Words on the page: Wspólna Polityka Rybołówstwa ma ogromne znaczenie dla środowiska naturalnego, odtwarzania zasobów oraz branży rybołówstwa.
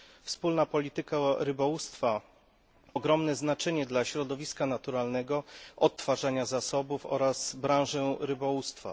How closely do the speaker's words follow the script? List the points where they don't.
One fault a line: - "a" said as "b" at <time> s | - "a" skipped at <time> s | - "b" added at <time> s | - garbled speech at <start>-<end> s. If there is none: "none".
- "ma" skipped at 2.2 s